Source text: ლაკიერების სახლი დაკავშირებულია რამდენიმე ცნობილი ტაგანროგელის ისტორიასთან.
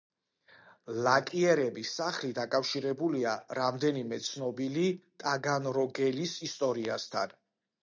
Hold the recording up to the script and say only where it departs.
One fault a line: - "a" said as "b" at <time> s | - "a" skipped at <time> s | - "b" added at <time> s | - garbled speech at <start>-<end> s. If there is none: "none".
none